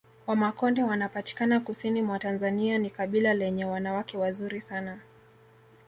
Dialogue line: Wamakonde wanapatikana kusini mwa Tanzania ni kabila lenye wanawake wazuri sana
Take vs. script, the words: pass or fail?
pass